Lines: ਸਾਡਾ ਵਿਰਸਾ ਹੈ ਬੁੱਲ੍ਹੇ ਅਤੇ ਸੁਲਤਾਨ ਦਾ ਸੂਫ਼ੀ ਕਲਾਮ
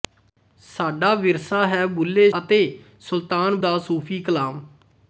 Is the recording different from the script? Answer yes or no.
no